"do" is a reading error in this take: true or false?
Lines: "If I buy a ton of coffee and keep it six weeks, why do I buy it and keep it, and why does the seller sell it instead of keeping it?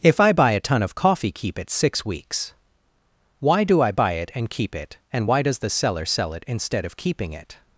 false